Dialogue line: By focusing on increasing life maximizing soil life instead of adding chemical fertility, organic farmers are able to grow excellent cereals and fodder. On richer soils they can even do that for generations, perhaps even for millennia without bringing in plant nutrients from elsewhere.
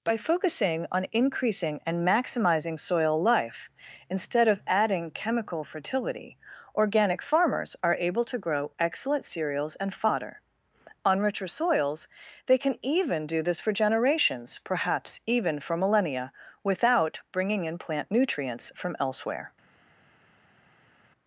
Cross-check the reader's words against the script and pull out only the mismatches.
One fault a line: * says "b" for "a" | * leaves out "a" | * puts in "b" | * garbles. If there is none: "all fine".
* says "and" for "life"
* says "this" for "that"